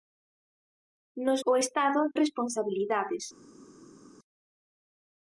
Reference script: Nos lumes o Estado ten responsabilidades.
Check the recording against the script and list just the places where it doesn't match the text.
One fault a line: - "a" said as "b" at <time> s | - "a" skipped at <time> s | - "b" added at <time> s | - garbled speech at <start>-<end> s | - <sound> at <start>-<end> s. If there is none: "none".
- "lumes" skipped at 1.4 s
- "ten" skipped at 2.0 s